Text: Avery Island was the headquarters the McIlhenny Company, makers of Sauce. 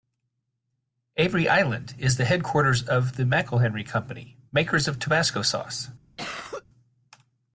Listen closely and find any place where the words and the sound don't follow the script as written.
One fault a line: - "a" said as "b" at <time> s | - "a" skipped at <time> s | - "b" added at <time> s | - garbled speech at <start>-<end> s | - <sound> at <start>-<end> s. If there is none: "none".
- "was" said as "is" at 2.0 s
- "of" added at 2.9 s
- "Tabasco" added at 5.0 s
- cough at 6.2-6.6 s